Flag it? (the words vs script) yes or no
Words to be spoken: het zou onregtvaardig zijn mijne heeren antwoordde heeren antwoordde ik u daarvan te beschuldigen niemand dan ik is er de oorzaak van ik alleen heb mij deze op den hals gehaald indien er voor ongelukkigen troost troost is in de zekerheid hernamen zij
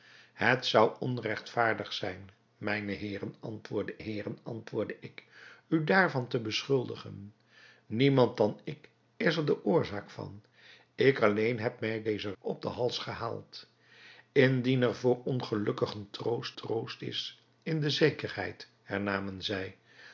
no